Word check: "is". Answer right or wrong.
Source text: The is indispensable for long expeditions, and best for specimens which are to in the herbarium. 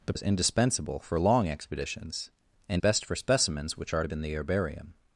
right